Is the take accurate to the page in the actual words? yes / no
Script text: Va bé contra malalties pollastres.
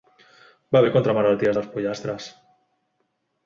no